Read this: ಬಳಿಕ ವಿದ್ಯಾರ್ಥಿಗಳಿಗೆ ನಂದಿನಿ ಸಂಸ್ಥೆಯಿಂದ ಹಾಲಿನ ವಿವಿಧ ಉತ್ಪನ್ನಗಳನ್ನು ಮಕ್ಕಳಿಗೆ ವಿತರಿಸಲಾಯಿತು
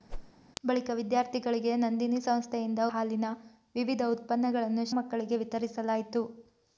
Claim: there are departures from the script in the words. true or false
false